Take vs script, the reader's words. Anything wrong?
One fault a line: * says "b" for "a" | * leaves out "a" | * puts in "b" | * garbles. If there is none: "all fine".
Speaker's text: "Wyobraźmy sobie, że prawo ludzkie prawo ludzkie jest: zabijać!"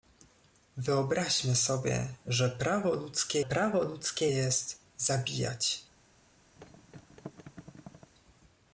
all fine